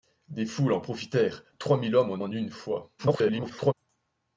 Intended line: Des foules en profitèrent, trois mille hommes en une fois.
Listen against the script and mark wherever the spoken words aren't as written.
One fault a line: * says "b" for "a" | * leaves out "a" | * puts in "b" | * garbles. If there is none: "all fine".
* puts in "en"
* garbles